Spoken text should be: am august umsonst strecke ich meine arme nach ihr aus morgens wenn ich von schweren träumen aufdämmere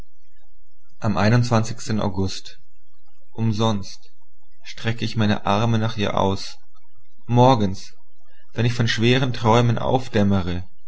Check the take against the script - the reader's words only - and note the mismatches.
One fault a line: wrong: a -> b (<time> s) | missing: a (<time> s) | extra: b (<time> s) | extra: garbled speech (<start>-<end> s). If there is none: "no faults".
no faults